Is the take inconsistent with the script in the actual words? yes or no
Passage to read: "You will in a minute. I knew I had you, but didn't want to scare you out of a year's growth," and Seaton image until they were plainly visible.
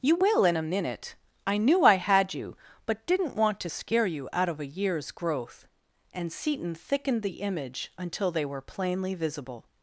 yes